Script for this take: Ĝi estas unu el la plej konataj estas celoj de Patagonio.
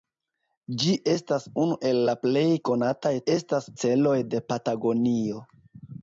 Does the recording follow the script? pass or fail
pass